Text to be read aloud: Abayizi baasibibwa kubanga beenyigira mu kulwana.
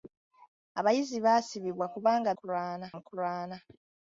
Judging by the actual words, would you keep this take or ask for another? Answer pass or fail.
fail